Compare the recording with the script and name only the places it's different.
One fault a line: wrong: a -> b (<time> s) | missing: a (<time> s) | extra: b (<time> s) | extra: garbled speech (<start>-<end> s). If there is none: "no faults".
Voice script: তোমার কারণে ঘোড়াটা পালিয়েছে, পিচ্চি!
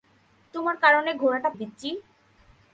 missing: পালিয়েছে (1.5 s)